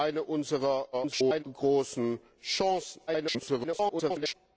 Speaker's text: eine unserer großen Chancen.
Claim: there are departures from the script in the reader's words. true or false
true